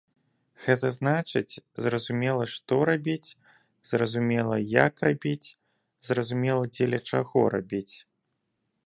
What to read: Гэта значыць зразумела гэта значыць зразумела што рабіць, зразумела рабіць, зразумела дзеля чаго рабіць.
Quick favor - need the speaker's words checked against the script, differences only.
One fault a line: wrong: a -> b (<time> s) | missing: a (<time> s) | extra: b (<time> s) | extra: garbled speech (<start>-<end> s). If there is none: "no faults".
missing: гэта значыць зразумела (2.5 s)
extra: як (4.8 s)